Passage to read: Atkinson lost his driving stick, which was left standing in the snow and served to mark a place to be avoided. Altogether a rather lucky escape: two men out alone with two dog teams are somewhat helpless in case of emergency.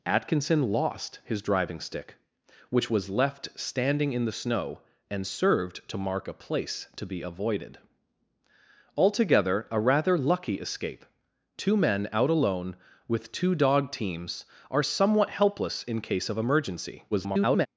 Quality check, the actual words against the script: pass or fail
fail